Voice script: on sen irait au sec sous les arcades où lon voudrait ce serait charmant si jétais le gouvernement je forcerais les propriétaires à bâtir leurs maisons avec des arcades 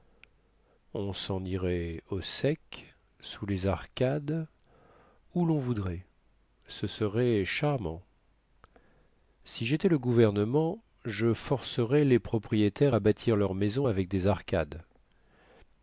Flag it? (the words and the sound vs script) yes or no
no